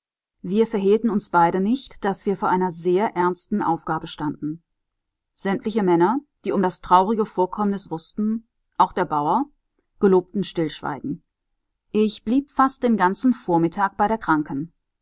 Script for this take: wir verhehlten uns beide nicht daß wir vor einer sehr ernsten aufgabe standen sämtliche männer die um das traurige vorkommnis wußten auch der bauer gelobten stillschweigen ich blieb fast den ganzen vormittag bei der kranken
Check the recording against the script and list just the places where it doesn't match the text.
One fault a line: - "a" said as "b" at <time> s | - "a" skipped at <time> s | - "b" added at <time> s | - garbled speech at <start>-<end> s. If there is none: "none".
none